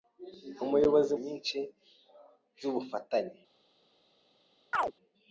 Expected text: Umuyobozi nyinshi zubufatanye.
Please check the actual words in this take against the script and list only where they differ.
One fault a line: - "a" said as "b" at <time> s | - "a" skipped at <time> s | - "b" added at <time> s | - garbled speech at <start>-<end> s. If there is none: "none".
none